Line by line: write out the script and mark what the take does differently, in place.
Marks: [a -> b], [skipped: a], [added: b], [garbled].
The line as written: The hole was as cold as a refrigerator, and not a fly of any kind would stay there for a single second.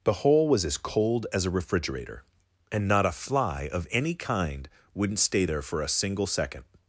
The hole was as cold as a refrigerator, and not a fly of any kind [would -> wouldn't] stay there for a single second.